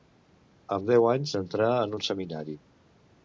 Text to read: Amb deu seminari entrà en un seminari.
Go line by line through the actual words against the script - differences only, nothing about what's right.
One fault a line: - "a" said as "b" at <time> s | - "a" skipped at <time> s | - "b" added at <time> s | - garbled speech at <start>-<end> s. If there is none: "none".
- "seminari" said as "anys" at 1.1 s